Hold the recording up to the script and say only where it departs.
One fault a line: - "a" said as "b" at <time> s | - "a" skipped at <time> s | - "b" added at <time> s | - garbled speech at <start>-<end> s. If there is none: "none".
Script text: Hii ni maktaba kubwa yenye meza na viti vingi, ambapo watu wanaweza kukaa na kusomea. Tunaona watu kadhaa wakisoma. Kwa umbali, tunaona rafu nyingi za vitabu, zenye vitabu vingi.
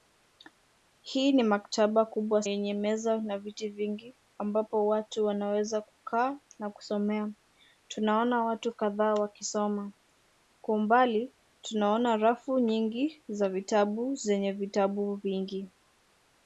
none